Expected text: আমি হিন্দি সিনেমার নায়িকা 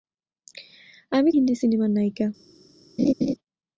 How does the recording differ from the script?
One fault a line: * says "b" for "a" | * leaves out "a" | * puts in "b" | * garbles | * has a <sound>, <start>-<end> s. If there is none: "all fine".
* has a laugh, 3.0-3.3 s